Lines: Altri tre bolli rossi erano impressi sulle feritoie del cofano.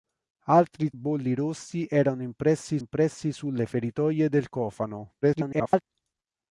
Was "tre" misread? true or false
true